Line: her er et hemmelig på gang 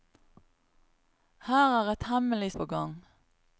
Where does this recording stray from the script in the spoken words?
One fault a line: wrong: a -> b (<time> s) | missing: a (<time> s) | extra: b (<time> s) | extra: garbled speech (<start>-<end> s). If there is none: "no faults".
no faults